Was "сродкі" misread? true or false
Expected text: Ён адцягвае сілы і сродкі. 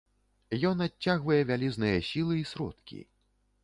false